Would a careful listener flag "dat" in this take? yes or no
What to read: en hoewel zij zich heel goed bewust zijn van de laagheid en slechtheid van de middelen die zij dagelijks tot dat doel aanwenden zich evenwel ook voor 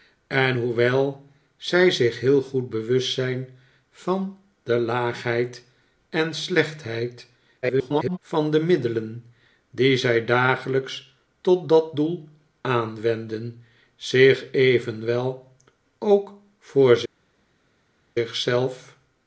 no